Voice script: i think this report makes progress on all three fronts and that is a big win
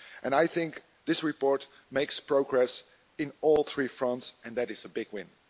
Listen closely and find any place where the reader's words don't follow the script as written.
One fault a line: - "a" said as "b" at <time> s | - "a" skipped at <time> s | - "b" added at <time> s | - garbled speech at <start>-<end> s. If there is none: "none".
none